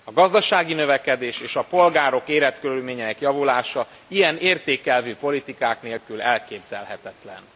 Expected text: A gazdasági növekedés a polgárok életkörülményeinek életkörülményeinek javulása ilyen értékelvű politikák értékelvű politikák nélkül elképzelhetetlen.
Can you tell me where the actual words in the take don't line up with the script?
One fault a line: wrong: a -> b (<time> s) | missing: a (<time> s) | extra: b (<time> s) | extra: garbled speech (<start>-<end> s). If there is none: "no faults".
extra: és (1.4 s)
missing: életkörülményeinek (3.2 s)
missing: értékelvű politikák (5.8 s)